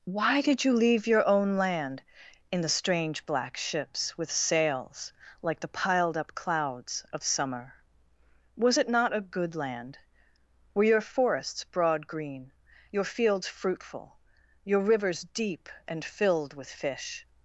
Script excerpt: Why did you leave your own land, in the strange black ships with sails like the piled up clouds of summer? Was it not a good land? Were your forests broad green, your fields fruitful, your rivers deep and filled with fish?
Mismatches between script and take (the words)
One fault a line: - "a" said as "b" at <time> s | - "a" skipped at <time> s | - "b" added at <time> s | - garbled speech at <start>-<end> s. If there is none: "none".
none